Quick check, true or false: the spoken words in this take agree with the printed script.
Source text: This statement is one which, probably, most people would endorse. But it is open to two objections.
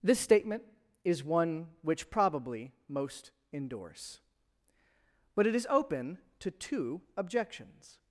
false